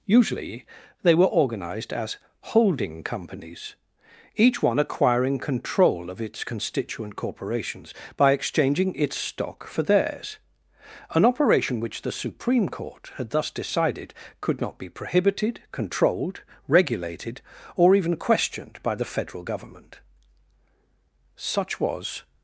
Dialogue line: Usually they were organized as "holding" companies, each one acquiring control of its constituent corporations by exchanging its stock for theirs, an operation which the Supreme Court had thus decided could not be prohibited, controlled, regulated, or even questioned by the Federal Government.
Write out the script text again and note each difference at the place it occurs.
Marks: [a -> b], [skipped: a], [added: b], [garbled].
Usually they were organized as "holding" companies, each one acquiring control of its constituent corporations by exchanging its stock for theirs, an operation which the Supreme Court had thus decided could not be prohibited, controlled, regulated, or even questioned by the Federal Government. [added: Such was]